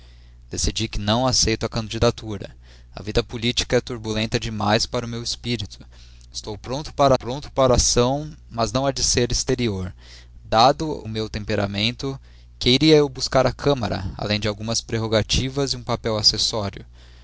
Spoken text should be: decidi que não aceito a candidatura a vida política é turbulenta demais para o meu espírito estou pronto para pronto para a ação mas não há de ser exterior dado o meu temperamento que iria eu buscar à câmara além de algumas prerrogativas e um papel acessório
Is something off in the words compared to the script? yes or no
no